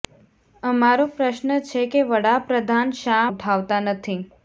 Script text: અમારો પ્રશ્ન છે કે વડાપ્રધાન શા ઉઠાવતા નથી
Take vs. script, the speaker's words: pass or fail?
pass